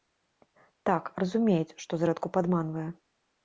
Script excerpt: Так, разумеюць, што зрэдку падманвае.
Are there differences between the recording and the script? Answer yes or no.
no